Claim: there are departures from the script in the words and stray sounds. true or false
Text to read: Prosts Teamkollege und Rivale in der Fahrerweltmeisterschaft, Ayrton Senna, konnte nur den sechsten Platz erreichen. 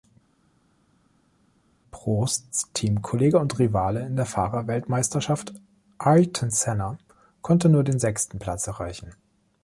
false